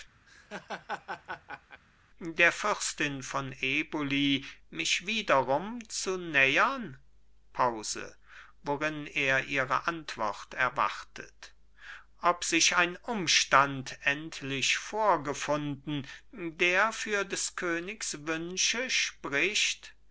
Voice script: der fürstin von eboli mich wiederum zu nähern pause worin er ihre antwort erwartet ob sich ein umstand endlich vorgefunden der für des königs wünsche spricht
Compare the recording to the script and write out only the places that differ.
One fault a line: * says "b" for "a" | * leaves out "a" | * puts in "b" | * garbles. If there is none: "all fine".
all fine